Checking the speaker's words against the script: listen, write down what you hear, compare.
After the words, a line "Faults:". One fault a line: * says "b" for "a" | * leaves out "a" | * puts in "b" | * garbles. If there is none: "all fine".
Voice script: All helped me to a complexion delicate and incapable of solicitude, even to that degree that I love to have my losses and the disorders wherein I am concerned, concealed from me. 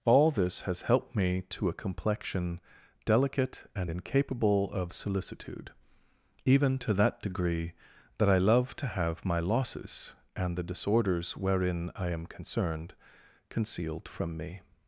All this has helped me to a complexion delicate and incapable of solicitude, even to that degree that I love to have my losses and the disorders wherein I am concerned, concealed from me.
Faults:
* puts in "this has"